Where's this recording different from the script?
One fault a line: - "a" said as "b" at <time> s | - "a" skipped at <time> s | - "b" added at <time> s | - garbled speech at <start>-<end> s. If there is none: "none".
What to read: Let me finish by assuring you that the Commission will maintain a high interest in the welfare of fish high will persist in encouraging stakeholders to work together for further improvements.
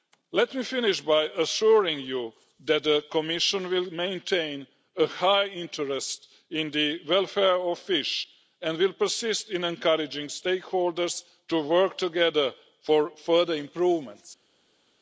- "high" said as "and" at 8.6 s